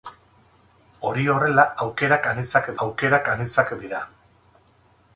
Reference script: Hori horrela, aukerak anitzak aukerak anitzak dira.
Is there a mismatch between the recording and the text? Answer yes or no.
no